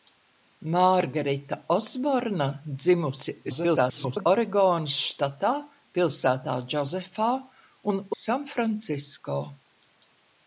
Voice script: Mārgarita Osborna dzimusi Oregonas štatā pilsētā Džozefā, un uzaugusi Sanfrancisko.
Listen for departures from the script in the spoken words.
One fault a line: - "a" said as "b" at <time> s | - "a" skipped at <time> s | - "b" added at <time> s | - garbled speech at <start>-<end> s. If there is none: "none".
- garbled speech at 3.4-4.3 s
- "uzaugusi" skipped at 8.0 s